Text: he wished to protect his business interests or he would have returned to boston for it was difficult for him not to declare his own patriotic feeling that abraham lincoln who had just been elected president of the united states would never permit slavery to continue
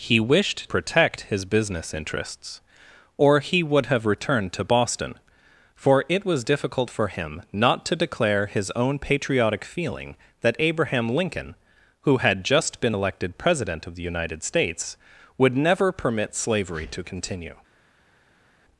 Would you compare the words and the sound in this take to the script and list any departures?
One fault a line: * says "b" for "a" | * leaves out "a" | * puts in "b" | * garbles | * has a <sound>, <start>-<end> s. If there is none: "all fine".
* leaves out "to"